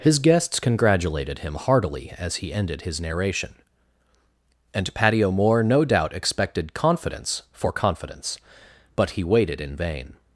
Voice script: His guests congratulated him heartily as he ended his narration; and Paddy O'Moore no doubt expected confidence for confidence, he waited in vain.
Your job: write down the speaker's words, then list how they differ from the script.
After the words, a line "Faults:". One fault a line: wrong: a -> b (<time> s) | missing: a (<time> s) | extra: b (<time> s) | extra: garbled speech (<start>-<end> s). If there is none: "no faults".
His guests congratulated him heartily as he ended his narration; and Paddy O'Moore no doubt expected confidence for confidence, but he waited in vain.
Faults:
extra: but (8.9 s)